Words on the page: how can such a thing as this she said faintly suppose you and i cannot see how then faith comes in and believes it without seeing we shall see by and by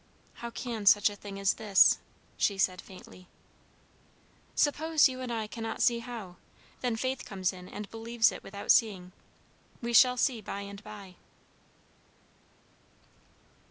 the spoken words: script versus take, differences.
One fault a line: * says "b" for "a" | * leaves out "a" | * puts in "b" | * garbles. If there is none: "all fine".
all fine